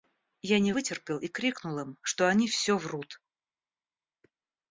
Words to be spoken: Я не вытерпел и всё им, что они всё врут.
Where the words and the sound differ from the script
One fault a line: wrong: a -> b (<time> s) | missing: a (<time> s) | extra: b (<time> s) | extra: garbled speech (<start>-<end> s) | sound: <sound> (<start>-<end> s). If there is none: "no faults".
wrong: всё -> крикнул (1.3 s)